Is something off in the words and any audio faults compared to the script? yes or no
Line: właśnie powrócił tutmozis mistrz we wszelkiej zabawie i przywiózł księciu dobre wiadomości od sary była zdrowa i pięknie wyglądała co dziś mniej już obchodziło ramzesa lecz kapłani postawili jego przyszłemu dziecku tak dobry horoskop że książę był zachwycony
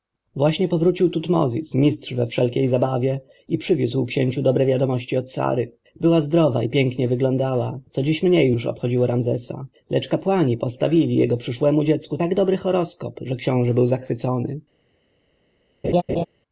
yes